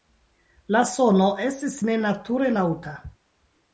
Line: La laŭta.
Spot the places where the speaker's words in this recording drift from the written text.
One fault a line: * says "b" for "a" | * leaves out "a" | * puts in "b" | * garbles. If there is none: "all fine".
* puts in "sono estis nenature"